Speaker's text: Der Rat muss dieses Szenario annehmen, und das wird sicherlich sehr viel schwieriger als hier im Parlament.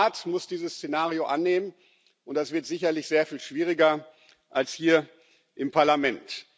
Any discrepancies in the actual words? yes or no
no